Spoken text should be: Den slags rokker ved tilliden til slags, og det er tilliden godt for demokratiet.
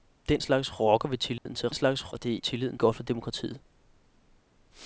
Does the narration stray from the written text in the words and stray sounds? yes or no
yes